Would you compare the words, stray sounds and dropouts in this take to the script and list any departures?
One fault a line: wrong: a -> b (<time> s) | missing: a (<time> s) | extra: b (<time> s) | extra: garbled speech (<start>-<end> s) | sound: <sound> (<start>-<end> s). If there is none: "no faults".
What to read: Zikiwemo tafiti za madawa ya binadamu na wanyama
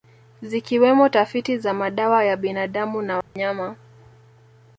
sound: dropout (3.2-3.4 s)